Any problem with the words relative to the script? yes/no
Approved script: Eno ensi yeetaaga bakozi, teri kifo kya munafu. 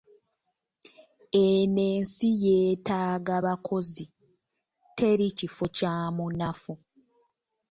no